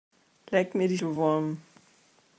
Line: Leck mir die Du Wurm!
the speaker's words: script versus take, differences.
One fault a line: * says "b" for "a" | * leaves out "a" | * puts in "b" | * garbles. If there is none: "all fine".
all fine